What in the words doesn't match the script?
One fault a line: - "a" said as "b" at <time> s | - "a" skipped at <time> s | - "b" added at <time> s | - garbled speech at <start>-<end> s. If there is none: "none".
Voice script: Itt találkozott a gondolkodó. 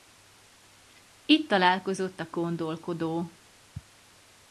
none